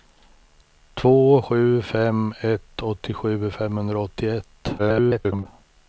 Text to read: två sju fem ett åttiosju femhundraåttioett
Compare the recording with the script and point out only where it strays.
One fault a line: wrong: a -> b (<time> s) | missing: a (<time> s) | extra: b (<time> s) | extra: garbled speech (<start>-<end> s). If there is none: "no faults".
extra: garbled speech (4.8-5.5 s)